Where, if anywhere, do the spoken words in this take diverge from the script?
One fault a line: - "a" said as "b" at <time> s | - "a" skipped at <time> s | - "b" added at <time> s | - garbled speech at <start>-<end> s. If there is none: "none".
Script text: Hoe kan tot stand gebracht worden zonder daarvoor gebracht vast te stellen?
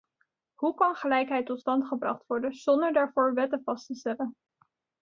- "gelijkheid" added at 0.9 s
- "gebracht" said as "wetten" at 3.3 s